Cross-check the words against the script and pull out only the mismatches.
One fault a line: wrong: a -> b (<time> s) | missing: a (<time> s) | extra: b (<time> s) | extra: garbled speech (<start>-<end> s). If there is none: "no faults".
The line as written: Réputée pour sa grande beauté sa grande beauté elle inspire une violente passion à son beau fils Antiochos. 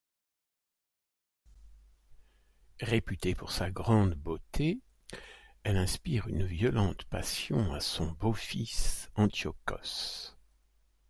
missing: sa grande beauté (4.8 s)